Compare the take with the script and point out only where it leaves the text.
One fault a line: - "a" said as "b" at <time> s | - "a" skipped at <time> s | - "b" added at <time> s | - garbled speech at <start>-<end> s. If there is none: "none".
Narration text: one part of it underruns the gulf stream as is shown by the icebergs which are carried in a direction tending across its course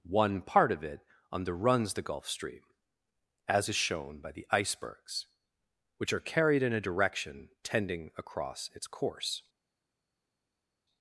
none